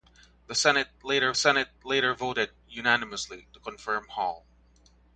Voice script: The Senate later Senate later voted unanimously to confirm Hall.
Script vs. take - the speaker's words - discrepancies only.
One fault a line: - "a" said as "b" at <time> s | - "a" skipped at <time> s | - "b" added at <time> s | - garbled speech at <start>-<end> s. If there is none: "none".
none